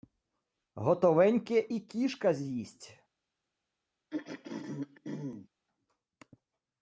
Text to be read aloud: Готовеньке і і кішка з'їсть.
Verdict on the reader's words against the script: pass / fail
fail